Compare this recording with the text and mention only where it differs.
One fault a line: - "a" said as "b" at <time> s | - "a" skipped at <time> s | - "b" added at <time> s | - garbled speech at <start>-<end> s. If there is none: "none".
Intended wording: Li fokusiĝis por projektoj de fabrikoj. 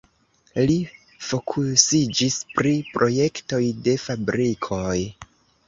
- "por" said as "pri" at 2.6 s